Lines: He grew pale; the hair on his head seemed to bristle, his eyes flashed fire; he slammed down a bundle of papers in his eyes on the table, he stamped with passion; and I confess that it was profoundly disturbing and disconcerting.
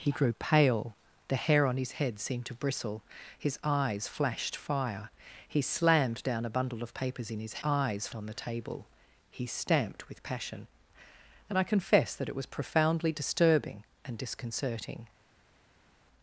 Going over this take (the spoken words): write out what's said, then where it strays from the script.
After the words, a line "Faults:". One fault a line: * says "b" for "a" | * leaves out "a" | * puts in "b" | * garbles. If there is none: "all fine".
He grew pale; the hair on his head seemed to bristle, his eyes flashed fire; he slammed down a bundle of papers in his eyes on the table, he stamped with passion; and I confess that it was profoundly disturbing and disconcerting.
Faults:
all fine